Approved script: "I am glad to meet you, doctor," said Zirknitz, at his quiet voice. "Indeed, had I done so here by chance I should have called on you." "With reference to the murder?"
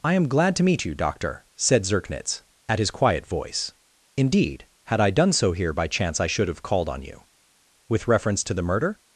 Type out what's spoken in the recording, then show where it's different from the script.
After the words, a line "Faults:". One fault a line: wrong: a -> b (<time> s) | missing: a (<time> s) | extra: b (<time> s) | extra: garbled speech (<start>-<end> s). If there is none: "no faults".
"I am glad to meet you, doctor," said Zirknitz, at his quiet voice. "Indeed, had I done so here by chance I should have called on you." "With reference to the murder?"
Faults:
no faults